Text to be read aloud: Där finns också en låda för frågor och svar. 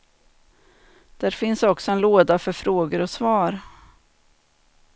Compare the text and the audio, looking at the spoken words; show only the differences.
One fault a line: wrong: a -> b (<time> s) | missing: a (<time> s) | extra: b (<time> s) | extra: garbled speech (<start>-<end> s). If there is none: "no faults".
no faults